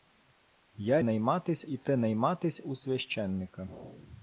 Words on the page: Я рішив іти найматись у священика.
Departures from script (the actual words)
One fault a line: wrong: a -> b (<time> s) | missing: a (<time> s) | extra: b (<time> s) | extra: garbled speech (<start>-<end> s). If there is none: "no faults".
wrong: рішив -> найматись (1.0 s)